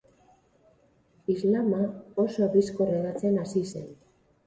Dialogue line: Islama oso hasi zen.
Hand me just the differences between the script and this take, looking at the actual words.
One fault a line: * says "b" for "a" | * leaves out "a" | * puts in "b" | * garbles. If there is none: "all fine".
* puts in "bizkor hedatzen"